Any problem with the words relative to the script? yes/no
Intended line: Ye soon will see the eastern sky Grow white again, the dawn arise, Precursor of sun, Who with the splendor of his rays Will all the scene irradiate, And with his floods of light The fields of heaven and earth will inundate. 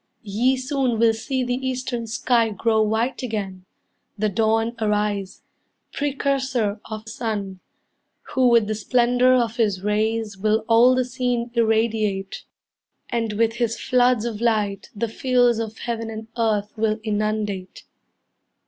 no